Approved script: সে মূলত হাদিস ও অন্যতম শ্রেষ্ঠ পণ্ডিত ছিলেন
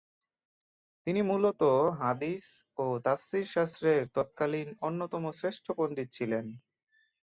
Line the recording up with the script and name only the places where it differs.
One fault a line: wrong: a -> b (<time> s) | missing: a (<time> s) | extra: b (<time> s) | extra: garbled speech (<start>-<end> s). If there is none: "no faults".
wrong: সে -> তিনি (1.1 s)
extra: তাফসীর শাস্ত্রের তৎকালীন (3.0 s)